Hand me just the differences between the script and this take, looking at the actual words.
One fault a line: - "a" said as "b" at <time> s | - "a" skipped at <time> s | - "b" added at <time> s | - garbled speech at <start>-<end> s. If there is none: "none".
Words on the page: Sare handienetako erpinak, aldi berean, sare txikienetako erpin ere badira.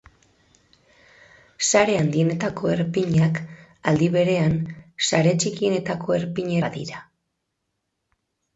- "ere" skipped at 6.5 s